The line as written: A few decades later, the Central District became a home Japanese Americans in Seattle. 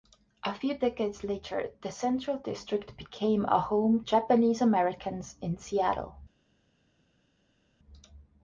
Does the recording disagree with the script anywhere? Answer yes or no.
no